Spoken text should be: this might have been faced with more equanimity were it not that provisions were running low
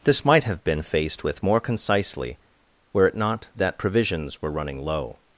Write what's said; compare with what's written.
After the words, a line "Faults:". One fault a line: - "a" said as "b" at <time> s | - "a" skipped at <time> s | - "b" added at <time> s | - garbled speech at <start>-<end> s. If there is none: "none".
this might have been faced with more concisely were it not that provisions were running low
Faults:
- "equanimity" said as "concisely" at 1.6 s